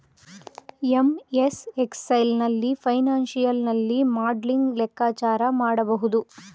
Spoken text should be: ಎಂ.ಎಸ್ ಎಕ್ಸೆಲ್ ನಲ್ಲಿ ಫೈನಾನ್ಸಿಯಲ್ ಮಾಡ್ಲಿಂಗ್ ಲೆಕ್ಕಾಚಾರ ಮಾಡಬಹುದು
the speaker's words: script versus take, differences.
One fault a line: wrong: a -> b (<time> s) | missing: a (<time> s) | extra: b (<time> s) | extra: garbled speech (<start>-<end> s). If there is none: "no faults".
extra: ನಲ್ಲಿ (3.7 s)